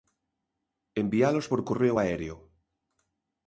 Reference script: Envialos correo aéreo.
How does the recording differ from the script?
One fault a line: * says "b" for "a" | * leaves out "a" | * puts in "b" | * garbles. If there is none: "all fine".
* puts in "por"